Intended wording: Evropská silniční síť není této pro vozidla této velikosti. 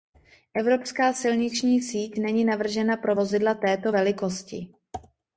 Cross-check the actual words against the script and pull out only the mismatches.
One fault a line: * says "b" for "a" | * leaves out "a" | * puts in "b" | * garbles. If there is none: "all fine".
* says "navržena" for "této"